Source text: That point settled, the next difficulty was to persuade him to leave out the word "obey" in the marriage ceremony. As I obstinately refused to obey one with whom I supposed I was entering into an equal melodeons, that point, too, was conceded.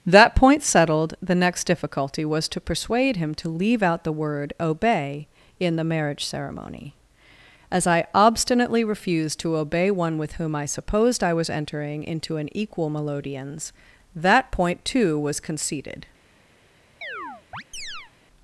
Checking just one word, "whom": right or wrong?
right